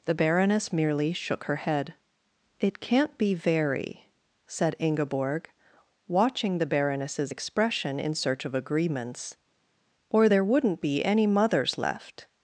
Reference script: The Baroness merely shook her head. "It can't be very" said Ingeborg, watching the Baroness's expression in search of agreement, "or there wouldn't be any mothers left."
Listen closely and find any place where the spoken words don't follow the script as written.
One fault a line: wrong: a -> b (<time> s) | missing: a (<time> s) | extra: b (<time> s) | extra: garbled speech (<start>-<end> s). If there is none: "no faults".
wrong: agreement -> agreements (8.5 s)